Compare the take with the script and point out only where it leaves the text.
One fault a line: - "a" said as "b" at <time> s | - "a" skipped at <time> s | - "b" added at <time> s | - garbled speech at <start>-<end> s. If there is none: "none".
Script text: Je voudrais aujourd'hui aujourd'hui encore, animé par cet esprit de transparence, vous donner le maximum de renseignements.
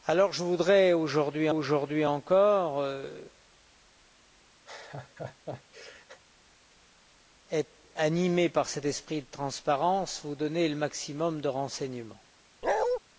none